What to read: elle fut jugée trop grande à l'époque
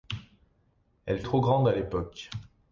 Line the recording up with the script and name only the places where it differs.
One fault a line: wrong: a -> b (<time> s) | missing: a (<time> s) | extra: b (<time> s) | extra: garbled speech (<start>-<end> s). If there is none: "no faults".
missing: fut jugée (1.2 s)